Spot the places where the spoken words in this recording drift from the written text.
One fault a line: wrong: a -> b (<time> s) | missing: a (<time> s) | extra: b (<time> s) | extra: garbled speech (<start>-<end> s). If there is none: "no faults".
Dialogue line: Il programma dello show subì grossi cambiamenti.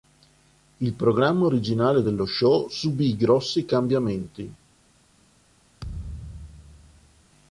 extra: originale (1.4 s)